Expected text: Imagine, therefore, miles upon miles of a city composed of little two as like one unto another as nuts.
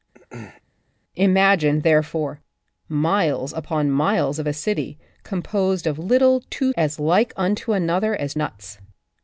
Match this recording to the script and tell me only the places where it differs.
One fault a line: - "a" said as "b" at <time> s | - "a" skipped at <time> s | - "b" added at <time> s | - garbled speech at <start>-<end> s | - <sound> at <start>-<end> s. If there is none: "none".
- throat clearing at 0.1-0.6 s